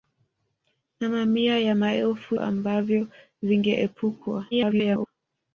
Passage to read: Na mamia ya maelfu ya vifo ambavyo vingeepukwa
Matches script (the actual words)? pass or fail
fail